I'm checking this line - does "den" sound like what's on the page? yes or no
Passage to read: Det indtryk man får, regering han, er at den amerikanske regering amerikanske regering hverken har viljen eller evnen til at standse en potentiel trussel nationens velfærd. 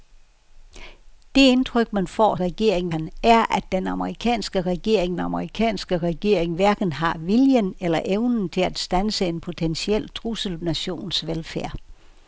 yes